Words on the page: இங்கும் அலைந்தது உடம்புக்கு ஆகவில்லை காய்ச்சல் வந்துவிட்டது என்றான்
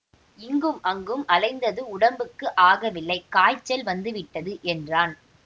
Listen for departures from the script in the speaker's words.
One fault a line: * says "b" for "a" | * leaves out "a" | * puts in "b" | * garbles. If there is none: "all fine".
* puts in "அங்கும்"